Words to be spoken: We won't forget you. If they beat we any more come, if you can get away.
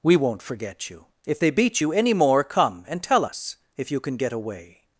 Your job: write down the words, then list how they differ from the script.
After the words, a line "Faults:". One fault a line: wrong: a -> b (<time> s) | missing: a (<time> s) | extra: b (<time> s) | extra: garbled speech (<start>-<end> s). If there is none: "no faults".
We won't forget you. If they beat you any more come, and tell us if you can get away.
Faults:
wrong: we -> you (1.8 s)
extra: and tell us (2.9 s)